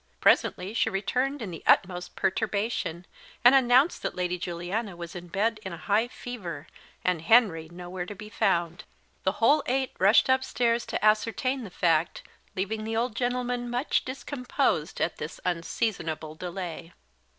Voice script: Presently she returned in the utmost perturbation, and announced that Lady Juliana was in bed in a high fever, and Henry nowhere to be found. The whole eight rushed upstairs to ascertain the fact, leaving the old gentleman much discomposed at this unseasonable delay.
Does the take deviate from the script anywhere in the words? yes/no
no